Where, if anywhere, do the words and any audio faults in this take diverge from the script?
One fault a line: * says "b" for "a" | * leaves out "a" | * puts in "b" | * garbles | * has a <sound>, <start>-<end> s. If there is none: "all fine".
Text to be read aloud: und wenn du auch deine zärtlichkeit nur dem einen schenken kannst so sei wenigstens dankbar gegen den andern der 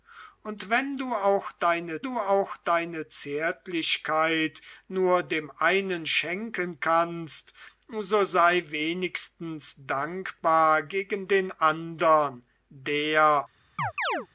* puts in "du auch deine"
* has a chirp, 13.8-14.3 s